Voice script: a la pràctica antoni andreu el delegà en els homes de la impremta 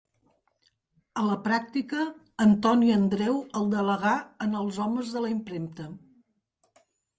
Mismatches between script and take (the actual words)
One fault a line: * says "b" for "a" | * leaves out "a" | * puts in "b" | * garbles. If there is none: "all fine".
all fine